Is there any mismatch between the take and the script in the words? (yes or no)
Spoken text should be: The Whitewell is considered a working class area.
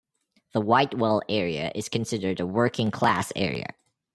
yes